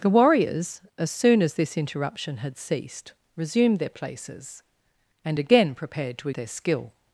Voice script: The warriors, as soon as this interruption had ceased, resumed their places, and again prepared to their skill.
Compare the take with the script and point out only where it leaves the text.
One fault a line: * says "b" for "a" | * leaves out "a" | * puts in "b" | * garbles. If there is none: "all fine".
all fine